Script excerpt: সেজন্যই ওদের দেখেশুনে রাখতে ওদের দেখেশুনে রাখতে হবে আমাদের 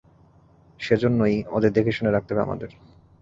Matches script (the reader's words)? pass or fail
fail